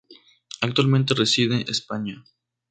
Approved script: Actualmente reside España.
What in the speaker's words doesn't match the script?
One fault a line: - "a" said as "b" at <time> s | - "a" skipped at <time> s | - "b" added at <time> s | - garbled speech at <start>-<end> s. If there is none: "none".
none